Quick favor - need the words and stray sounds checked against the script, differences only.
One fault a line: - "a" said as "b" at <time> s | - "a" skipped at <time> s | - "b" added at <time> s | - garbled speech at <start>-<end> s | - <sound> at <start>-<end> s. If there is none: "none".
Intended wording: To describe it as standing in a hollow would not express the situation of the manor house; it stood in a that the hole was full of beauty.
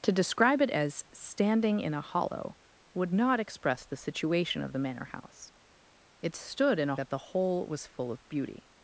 none